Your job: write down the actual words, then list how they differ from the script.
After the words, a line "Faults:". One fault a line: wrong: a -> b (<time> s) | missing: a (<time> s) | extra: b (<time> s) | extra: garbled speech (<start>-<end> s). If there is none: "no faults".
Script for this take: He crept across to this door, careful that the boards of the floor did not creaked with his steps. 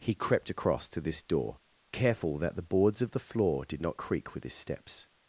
He crept across to this door, careful that the boards of the floor did not creak with his steps.
Faults:
wrong: creaked -> creak (4.0 s)